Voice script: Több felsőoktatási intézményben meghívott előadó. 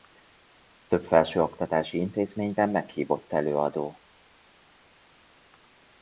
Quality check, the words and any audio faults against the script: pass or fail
pass